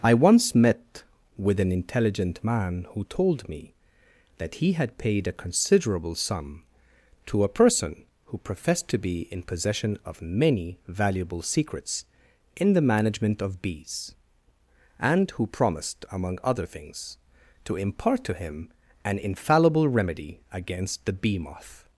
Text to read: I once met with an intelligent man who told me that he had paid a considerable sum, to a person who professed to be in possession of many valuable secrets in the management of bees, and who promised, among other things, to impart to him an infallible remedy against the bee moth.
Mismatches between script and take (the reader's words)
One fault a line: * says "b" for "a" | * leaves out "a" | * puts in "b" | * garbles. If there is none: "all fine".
all fine